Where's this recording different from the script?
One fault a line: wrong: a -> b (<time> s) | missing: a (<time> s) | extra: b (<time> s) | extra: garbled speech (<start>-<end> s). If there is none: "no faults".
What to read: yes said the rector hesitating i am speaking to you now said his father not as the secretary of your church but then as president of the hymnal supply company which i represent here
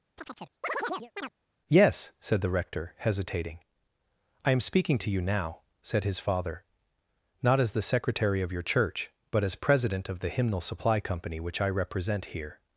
missing: then (9.4 s)